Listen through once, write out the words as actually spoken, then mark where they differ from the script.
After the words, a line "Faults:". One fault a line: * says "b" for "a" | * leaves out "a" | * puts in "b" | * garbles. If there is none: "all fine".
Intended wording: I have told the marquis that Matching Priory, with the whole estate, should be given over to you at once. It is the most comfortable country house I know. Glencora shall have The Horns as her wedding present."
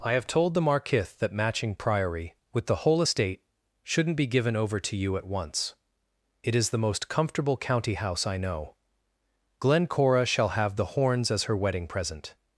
I have told the marquis that Matching Priory, with the whole estate, shouldn't be given over to you at once. It is the most comfortable county house I know. Glencora shall have The Horns as her wedding present."
Faults:
* says "shouldn't" for "should"
* says "county" for "country"